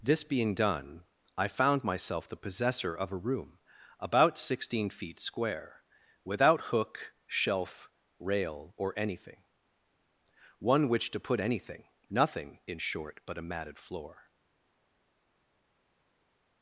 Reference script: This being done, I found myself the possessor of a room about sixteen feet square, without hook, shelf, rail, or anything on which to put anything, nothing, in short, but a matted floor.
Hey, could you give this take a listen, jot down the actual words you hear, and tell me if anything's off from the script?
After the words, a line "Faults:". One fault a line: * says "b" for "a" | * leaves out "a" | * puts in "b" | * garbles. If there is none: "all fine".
This being done, I found myself the possessor of a room about sixteen feet square, without hook, shelf, rail, or anything one which to put anything, nothing, in short, but a matted floor.
Faults:
* says "one" for "on"